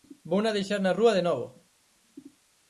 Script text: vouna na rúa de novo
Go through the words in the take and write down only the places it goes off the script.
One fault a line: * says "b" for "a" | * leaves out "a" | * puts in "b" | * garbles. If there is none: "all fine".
* puts in "deixar"